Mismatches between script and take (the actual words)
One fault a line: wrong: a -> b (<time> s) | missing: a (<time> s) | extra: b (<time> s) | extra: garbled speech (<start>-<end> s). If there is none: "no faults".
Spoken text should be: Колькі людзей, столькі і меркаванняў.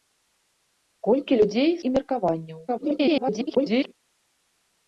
missing: столькі (1.7 s)
extra: garbled speech (2.7-3.9 s)